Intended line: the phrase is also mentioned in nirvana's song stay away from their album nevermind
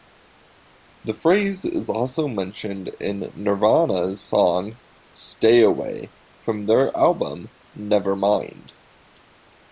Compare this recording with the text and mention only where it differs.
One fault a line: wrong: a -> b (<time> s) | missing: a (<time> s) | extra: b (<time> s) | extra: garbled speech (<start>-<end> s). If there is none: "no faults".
no faults